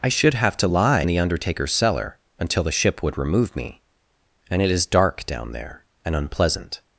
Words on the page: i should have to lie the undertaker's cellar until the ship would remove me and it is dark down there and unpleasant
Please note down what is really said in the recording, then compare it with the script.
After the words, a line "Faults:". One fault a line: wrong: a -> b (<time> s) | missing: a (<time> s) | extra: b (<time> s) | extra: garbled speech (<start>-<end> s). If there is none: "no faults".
i should have to lie the undertaker's cellar until the ship would remove me and it is dark down there and unpleasant
Faults:
no faults